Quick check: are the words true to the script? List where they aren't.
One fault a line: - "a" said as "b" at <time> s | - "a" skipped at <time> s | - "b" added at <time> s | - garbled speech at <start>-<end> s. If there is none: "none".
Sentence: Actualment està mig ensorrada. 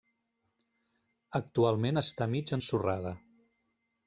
none